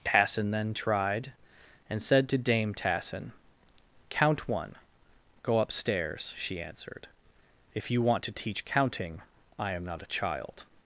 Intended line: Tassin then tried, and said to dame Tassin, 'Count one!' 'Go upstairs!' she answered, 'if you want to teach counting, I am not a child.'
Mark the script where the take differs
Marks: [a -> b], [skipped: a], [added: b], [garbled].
Tassin then tried, and said to dame Tassin, 'Count one!' 'Go upstairs!' she answered, 'if you want to teach counting, I am not a child.'